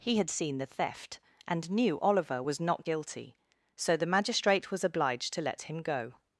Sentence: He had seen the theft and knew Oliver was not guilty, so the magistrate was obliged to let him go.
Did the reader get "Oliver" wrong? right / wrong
right